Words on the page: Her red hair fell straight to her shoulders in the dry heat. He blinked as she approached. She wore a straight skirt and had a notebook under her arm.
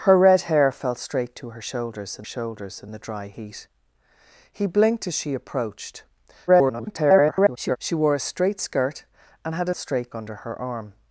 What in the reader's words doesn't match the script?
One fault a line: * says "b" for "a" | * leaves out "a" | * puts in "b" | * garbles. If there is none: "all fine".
* puts in "shoulders in"
* garbles
* says "straight" for "notebook"